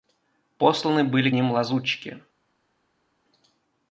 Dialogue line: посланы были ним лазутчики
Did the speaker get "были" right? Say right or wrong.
right